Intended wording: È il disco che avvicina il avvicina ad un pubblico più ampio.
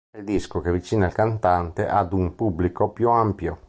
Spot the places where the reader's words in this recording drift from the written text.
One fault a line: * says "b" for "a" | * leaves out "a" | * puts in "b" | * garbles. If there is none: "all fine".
* says "cantante" for "avvicina"